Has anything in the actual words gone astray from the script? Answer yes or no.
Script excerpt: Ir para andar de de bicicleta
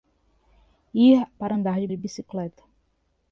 no